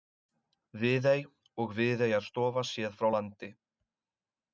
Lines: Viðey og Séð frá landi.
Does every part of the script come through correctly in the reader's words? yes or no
no